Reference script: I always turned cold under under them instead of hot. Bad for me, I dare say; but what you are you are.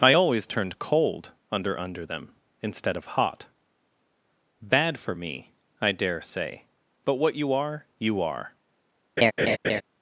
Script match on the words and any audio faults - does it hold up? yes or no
no